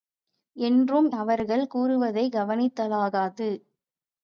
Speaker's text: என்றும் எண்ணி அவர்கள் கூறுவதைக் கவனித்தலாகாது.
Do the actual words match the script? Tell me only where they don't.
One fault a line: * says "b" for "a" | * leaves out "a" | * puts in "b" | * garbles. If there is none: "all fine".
* leaves out "எண்ணி"